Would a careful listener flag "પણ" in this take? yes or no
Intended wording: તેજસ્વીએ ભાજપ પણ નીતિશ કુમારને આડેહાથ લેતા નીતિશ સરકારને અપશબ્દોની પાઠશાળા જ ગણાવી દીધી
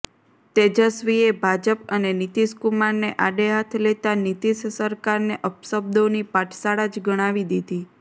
yes